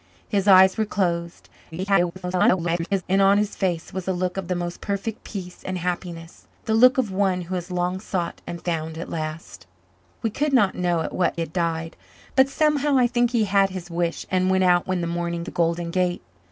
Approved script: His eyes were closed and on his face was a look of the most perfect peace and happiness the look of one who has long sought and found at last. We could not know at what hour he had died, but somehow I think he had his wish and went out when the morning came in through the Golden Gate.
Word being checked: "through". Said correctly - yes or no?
no